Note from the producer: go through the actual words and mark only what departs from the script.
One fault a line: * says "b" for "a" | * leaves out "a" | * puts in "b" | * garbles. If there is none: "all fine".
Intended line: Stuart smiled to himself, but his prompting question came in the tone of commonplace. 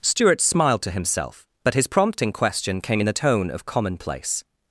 all fine